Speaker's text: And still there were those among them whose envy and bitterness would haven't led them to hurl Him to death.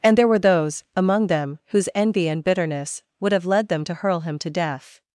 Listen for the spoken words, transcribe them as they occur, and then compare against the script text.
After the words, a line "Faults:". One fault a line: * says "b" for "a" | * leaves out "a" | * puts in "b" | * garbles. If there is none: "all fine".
And there were those among them whose envy and bitterness would have led them to hurl Him to death.
Faults:
* leaves out "still"
* says "have" for "haven't"